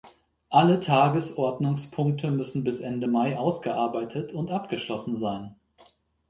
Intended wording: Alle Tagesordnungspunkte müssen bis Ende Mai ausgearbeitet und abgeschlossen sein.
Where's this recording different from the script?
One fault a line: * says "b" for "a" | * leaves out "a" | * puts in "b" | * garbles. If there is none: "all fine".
all fine